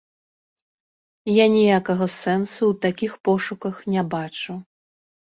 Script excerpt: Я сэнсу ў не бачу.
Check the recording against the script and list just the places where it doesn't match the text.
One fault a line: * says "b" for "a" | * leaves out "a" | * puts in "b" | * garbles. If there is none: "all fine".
* puts in "ніякага"
* puts in "такіх пошуках"